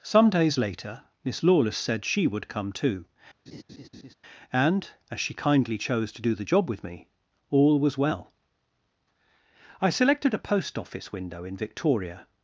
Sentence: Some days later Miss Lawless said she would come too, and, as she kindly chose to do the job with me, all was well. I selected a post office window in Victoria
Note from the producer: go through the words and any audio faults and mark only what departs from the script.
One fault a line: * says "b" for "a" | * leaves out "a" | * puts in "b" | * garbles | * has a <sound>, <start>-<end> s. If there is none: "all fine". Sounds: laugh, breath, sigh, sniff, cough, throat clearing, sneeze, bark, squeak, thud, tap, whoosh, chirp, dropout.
* has a laugh, 3.5-4.1 s